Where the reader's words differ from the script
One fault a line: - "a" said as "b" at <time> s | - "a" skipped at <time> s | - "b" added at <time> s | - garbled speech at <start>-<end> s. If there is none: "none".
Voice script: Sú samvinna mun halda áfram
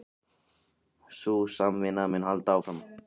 none